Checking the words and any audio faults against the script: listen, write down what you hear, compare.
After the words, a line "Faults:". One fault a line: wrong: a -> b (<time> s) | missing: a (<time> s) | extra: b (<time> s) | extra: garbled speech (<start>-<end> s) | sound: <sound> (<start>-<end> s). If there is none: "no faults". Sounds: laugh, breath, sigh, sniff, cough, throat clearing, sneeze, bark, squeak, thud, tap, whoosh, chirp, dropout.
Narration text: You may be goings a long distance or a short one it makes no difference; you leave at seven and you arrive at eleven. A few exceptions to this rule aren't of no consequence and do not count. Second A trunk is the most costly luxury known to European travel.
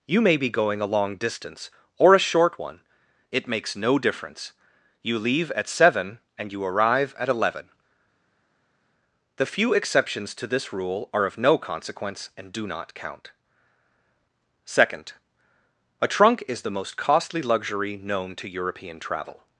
You may be going a long distance or a short one it makes no difference; you leave at seven and you arrive at eleven. The few exceptions to this rule are of no consequence and do not count. Second A trunk is the most costly luxury known to European travel.
Faults:
wrong: goings -> going (0.5 s)
wrong: A -> The (9.4 s)
wrong: aren't -> are (11.1 s)